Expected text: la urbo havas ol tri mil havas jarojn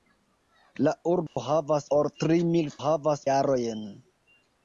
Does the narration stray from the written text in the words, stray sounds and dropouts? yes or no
yes